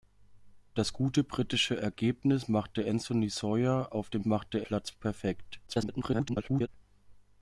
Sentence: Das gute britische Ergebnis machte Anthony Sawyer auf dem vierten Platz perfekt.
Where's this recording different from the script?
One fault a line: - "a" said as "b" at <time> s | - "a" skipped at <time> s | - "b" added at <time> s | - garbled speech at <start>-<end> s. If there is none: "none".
- "vierten" said as "machte" at 4.2 s
- garbled speech at 5.7-6.7 s